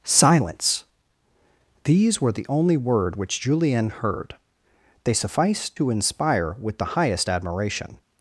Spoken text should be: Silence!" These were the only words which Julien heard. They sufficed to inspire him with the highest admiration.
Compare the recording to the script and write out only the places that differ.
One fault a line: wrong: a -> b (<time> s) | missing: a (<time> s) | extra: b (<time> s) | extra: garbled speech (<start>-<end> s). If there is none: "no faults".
wrong: words -> word (2.8 s)
missing: him (6.6 s)